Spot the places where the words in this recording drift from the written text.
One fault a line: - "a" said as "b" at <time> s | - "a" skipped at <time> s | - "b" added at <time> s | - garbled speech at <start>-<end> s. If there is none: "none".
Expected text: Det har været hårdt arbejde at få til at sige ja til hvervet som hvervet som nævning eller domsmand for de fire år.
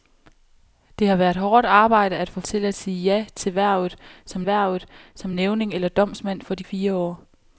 none